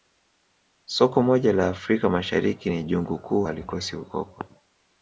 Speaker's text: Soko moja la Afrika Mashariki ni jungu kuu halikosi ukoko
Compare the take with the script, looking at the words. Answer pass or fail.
pass